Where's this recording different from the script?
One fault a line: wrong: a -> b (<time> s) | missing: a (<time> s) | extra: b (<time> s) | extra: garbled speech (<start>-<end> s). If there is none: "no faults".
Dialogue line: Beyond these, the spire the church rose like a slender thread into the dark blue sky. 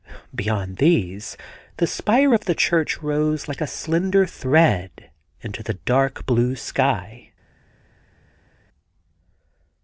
extra: of (2.3 s)